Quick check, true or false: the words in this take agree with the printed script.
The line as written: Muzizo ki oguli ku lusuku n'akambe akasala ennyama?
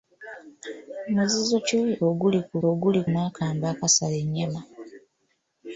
false